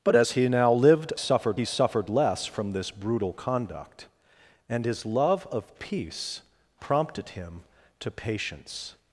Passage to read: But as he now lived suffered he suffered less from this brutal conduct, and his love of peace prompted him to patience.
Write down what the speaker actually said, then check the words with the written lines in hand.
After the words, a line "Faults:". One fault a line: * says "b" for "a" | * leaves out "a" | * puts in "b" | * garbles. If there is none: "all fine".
But as he now lived suffered he suffered less from this brutal conduct, and his love of peace prompted him to patience.
Faults:
all fine